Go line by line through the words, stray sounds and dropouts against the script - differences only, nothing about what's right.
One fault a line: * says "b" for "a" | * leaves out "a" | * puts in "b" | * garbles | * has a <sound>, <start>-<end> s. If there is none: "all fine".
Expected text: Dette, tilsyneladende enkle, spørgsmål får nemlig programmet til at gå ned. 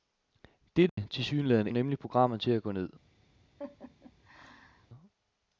* has a dropout, 0.9-1.0 s
* leaves out "enkle spørgsmål får"
* has a laugh, 3.6-4.9 s